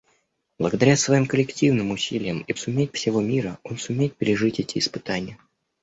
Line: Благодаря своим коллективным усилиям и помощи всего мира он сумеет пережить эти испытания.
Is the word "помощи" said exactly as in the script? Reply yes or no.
no